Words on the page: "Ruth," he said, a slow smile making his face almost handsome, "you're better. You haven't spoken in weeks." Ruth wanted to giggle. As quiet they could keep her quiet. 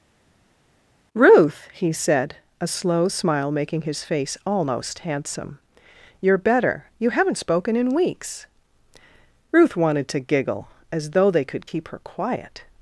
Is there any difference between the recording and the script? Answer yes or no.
yes